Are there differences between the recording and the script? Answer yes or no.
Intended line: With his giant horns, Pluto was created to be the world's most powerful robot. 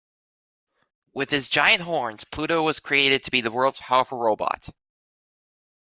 yes